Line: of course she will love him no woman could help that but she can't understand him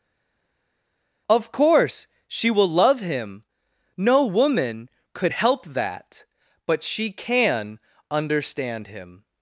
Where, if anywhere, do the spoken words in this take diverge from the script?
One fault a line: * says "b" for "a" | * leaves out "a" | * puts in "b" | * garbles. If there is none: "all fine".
* says "can" for "can't"